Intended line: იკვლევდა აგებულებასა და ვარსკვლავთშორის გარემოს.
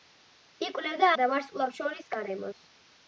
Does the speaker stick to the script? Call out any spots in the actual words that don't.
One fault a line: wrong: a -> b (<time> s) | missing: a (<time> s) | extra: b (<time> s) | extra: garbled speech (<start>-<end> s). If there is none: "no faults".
missing: აგებულებასა (1.1 s)